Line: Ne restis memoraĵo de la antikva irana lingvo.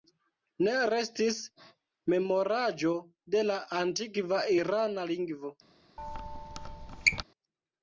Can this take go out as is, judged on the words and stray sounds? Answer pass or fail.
fail